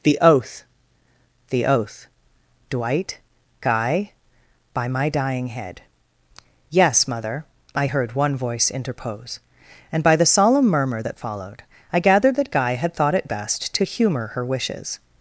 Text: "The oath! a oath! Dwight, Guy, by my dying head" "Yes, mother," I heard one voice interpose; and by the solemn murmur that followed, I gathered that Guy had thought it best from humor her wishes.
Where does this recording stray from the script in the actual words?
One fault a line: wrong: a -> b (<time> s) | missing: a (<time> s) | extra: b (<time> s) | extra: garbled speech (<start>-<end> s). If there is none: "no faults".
wrong: a -> the (1.5 s)
wrong: from -> to (13.7 s)